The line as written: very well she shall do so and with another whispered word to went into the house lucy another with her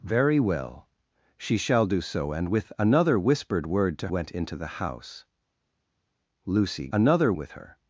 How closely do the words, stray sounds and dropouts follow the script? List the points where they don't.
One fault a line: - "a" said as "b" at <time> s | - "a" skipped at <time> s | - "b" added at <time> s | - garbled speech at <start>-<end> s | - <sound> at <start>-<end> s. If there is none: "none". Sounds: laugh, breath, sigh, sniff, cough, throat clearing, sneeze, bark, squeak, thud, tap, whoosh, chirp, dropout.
none